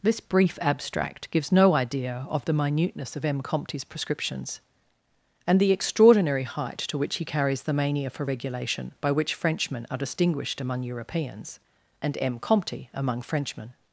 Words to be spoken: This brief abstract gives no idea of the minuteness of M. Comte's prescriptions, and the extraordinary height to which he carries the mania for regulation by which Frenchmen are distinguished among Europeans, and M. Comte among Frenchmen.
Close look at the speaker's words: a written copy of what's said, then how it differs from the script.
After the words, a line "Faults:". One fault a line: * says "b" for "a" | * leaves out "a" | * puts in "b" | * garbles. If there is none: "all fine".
This brief abstract gives no idea of the minuteness of M. Comte's prescriptions, and the extraordinary height to which he carries the mania for regulation by which Frenchmen are distinguished among Europeans, and M. Comte among Frenchmen.
Faults:
all fine